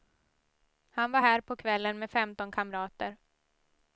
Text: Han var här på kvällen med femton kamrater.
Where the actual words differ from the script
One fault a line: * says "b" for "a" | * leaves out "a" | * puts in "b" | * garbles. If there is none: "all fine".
all fine